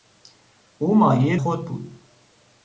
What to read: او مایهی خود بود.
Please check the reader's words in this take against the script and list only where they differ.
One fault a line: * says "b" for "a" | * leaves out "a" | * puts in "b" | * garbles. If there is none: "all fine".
all fine